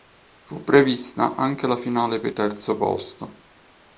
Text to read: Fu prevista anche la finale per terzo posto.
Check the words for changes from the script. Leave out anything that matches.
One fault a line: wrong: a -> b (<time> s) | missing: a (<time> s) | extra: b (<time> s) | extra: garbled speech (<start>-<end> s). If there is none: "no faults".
no faults